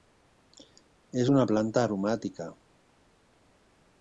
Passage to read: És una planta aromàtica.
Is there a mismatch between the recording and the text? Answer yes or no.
no